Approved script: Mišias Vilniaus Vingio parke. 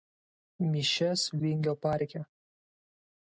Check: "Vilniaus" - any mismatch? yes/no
yes